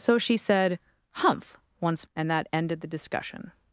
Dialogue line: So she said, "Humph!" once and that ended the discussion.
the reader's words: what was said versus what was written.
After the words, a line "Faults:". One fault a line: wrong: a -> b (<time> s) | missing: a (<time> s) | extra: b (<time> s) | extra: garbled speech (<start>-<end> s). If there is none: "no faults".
So she said, "Humph!" once and that ended the discussion.
Faults:
no faults